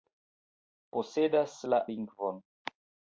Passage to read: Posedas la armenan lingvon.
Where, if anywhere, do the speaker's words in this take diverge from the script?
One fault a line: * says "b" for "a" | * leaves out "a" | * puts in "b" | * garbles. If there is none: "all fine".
* leaves out "armenan"